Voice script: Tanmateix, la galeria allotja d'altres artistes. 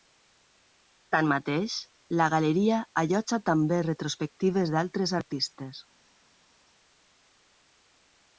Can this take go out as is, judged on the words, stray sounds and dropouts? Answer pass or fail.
fail